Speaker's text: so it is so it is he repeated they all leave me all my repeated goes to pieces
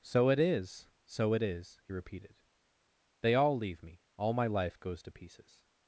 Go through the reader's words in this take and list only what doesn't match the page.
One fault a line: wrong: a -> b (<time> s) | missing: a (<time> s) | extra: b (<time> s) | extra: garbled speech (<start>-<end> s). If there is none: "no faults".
wrong: repeated -> life (4.5 s)